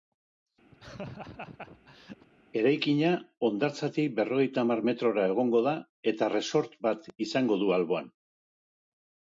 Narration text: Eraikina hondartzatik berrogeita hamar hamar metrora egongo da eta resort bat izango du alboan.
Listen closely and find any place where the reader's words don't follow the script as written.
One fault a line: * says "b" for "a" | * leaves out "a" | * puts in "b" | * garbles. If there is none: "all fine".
* leaves out "hamar"